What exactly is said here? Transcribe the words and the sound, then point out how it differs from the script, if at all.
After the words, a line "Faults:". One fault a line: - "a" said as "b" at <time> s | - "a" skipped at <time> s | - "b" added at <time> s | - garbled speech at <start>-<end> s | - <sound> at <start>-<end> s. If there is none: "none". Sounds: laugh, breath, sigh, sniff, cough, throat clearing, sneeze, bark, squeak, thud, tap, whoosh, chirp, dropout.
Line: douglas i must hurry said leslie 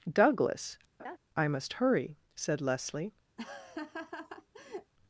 douglas i must hurry said leslie
Faults:
- laugh at 1.0-1.2 s
- laugh at 3.4-4.9 s